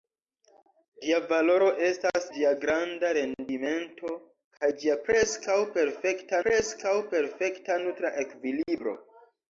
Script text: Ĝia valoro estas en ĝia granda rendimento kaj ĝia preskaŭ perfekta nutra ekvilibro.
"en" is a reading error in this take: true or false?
true